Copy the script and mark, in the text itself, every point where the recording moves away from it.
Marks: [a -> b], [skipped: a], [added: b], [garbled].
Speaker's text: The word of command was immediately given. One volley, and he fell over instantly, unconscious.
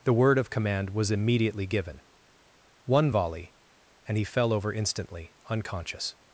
The word of command was immediately given. One volley, and he fell over instantly, unconscious.